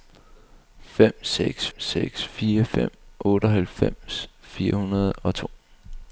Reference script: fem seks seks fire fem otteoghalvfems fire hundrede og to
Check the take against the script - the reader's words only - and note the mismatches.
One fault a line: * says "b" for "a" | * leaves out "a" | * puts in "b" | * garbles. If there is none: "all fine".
all fine